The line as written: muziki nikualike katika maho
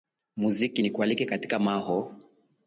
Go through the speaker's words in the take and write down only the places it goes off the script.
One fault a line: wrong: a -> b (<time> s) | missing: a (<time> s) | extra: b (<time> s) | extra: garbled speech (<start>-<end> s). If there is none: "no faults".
no faults